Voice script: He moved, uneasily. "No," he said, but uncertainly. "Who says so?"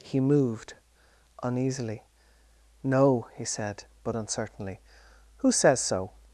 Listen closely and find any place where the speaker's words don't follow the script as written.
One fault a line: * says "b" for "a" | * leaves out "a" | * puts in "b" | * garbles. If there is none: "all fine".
all fine